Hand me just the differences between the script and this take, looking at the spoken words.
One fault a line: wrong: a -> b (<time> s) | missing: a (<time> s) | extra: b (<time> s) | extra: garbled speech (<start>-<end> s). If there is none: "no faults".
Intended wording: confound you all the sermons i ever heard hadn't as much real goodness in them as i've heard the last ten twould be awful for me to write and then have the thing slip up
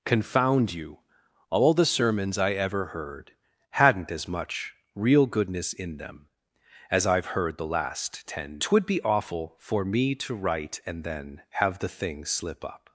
no faults